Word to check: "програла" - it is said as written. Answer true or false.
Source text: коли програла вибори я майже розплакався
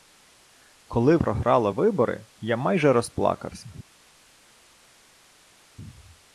true